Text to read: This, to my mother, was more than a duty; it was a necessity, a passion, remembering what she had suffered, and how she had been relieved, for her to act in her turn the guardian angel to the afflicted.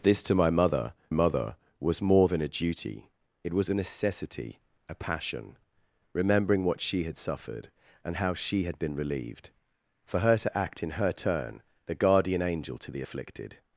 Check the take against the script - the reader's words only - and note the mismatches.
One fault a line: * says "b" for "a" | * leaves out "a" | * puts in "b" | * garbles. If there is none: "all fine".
* puts in "mother"